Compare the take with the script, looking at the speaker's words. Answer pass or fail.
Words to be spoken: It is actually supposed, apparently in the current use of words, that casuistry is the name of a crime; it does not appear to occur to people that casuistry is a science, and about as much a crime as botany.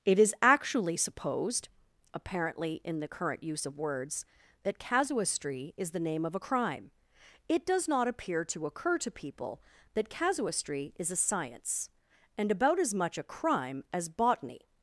pass